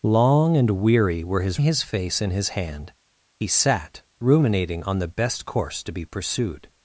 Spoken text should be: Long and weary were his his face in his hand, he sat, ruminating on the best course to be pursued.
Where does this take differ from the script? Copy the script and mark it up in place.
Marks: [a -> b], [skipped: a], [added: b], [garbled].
Long and weary were his his face in his hand, he sat, ruminating on the best course to be pursued.